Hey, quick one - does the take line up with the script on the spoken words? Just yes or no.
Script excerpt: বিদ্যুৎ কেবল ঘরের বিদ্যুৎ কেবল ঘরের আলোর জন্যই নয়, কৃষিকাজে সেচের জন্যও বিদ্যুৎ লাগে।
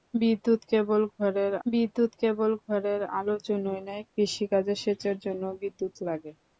yes